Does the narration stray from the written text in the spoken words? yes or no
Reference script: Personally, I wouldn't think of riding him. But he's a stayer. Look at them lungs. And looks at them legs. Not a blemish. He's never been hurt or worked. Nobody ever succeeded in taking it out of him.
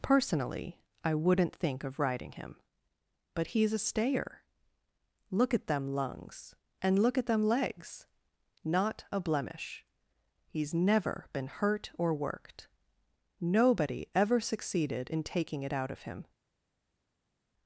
yes